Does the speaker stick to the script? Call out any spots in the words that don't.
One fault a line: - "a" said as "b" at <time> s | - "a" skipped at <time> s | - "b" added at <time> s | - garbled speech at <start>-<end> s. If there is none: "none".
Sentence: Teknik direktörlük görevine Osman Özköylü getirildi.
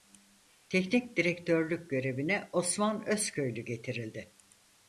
none